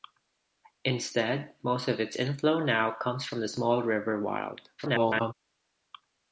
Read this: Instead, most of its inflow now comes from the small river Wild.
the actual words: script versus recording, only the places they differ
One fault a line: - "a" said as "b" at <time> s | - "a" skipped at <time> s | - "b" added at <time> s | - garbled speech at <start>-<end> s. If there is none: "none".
- garbled speech at 4.8-5.3 s